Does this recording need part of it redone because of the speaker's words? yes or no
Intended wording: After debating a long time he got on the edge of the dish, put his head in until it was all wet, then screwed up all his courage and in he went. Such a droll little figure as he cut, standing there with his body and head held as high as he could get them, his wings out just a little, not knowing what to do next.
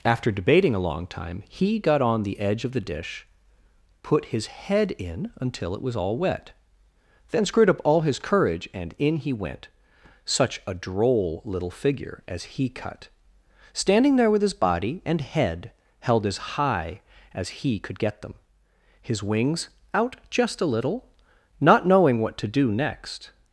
no